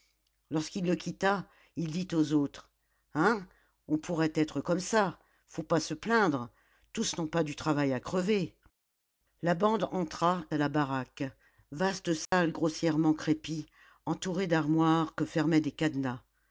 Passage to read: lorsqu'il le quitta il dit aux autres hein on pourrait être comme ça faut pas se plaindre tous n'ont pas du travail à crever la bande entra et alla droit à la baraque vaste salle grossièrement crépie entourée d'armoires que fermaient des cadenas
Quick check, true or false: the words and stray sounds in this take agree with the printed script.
false